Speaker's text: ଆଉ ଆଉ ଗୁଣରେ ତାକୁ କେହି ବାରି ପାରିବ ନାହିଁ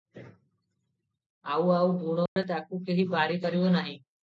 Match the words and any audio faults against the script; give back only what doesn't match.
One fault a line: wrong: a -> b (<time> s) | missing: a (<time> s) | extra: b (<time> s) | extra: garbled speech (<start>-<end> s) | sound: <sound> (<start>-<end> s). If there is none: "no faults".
sound: dropout (2.3-2.4 s)